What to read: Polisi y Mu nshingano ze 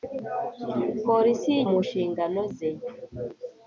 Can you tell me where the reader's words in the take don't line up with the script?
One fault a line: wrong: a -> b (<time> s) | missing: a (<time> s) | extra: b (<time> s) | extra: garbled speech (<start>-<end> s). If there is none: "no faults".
no faults